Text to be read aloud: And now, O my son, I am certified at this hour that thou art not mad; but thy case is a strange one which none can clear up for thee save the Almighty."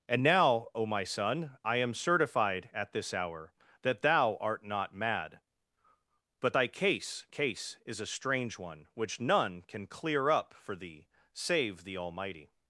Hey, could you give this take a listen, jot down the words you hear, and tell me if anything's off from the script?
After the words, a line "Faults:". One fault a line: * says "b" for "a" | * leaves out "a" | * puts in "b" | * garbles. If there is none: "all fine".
And now, O my son, I am certified at this hour that thou art not mad; but thy case case is a strange one which none can clear up for thee save the Almighty."
Faults:
* puts in "case"